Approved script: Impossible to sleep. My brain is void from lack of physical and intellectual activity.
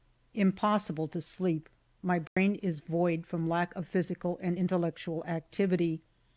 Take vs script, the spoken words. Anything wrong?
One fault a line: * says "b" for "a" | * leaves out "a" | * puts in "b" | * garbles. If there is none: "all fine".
all fine